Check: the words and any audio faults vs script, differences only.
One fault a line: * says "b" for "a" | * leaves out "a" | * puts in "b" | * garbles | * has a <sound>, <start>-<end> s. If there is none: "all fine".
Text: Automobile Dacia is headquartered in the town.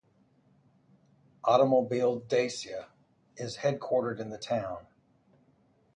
all fine